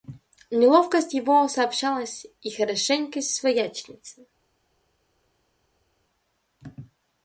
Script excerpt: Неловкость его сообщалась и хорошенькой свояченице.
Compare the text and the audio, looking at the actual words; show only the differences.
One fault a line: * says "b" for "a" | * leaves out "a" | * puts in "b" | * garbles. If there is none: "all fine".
all fine